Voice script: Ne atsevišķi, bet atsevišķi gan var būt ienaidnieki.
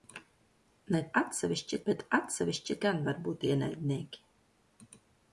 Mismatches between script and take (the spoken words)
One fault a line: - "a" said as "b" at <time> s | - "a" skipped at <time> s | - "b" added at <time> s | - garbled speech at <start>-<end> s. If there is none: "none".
none